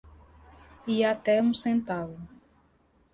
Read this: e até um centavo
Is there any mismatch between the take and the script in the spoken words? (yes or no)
no